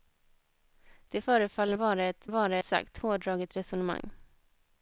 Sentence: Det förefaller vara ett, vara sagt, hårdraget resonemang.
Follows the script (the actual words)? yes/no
yes